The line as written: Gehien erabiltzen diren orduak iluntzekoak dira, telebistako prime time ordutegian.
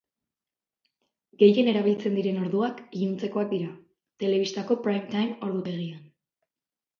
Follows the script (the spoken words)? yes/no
yes